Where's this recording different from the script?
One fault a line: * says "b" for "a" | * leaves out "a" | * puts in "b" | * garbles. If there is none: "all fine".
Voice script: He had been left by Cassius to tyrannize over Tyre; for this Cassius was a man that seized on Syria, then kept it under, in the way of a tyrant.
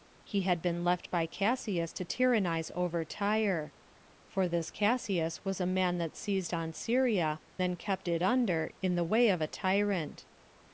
all fine